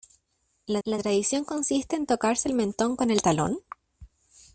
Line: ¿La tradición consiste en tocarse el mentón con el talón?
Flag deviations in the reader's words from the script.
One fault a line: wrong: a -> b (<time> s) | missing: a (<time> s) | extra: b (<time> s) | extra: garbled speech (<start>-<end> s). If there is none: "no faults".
extra: la (0.8 s)